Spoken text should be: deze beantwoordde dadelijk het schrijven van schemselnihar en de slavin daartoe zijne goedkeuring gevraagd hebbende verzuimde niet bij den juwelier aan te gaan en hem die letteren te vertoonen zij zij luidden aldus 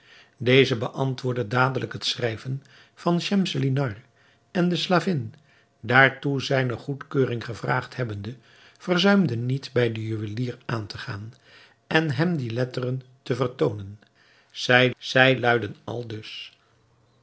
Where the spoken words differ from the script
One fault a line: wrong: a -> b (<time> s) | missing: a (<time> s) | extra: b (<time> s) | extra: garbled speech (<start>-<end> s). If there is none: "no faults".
no faults